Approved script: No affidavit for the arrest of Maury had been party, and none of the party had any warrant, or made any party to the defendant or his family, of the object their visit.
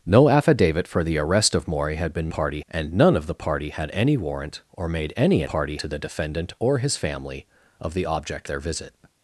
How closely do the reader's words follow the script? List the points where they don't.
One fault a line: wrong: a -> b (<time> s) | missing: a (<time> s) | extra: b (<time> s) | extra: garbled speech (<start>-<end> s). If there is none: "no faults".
no faults